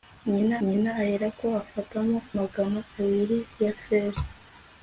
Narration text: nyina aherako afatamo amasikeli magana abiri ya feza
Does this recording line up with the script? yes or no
no